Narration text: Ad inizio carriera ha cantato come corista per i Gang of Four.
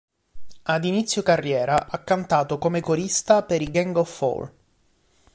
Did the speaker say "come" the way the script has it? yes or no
yes